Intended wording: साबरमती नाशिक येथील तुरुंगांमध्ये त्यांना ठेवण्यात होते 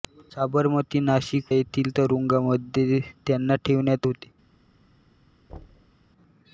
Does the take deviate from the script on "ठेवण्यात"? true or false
false